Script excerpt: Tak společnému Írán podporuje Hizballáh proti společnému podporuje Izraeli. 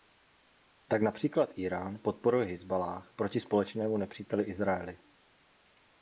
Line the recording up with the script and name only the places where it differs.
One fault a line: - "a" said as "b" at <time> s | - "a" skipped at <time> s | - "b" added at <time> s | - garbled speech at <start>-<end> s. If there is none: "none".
- "společnému" said as "například" at 1.0 s
- "podporuje" said as "nepříteli" at 4.0 s